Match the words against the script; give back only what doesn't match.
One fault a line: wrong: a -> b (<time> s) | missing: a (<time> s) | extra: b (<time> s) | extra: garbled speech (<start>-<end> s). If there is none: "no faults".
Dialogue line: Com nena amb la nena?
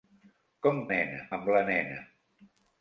no faults